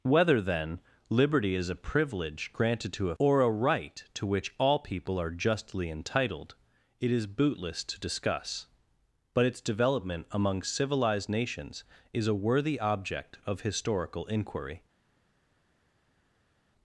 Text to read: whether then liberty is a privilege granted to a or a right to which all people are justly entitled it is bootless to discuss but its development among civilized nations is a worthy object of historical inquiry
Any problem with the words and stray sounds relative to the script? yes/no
no